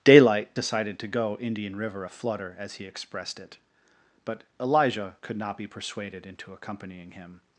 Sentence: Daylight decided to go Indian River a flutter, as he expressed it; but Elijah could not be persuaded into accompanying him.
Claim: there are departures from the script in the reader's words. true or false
false